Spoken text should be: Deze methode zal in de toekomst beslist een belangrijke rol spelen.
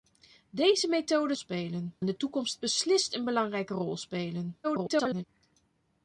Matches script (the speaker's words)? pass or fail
fail